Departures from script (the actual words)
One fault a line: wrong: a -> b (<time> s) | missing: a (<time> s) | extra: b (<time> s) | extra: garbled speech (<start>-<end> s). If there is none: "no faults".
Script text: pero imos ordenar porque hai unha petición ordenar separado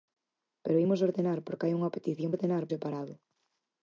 no faults